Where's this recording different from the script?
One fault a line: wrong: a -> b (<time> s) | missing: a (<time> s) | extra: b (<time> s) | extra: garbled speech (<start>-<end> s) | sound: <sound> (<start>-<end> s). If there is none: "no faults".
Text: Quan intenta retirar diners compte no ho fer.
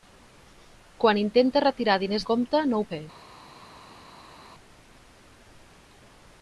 no faults